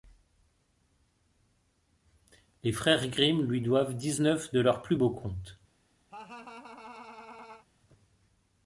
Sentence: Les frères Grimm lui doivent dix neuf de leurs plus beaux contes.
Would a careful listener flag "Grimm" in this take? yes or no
no